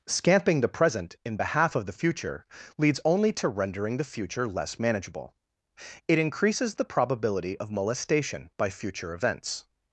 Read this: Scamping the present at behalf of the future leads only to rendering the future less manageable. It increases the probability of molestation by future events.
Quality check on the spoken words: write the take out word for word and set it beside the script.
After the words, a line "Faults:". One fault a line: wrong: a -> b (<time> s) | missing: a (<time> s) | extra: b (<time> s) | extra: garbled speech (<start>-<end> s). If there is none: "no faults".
Scamping the present in behalf of the future leads only to rendering the future less manageable. It increases the probability of molestation by future events.
Faults:
wrong: at -> in (1.2 s)